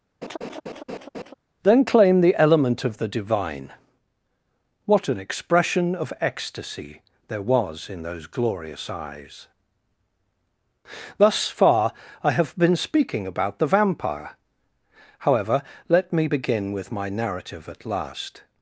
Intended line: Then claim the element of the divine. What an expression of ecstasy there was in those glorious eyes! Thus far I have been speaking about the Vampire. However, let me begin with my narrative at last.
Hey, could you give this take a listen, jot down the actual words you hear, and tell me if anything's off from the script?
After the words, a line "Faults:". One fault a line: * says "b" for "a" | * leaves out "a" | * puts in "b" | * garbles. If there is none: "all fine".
Then claim the element of the divine. What an expression of ecstasy there was in those glorious eyes! Thus far I have been speaking about the Vampire. However, let me begin with my narrative at last.
Faults:
all fine